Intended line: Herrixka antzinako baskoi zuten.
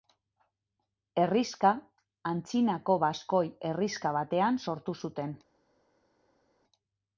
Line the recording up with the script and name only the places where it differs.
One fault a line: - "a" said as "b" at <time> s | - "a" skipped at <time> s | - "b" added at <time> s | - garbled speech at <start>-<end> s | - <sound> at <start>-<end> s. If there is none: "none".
- "herrixka batean sortu" added at 3.7 s